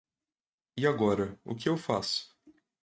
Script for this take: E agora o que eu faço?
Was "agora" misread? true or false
false